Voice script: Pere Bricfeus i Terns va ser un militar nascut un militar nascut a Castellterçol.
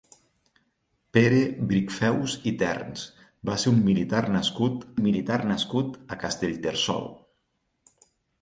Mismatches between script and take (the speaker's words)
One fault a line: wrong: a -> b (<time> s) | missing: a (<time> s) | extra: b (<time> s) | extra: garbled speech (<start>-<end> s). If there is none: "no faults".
no faults